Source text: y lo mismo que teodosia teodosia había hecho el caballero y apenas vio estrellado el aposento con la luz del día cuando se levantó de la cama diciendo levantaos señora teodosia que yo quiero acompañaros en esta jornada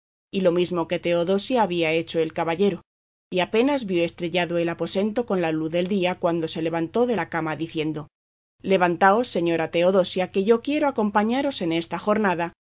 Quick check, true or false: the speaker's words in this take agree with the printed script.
false